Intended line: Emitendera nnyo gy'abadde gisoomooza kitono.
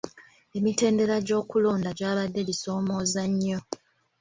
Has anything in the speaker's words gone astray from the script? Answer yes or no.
yes